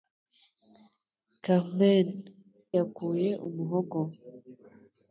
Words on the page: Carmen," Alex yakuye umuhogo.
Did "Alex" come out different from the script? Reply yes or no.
yes